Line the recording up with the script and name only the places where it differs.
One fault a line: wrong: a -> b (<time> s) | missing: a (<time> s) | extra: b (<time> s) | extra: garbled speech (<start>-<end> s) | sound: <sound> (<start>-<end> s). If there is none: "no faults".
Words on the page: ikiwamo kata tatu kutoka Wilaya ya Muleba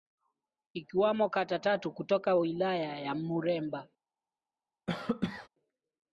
sound: cough (4.9-5.5 s)